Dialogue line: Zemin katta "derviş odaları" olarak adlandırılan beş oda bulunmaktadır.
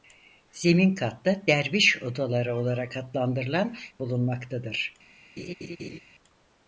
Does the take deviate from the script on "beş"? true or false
true